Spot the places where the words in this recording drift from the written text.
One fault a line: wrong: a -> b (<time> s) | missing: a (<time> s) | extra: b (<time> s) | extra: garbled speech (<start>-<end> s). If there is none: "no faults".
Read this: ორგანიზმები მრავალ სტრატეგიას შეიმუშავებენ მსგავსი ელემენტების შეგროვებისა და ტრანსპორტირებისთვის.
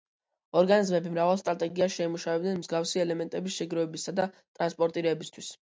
no faults